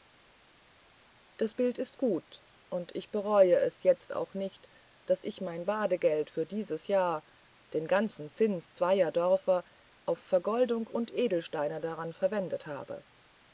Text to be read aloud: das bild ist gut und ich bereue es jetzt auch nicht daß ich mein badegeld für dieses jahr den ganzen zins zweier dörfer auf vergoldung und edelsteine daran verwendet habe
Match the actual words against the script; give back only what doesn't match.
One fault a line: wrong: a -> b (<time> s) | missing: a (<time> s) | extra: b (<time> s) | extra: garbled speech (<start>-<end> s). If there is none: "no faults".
no faults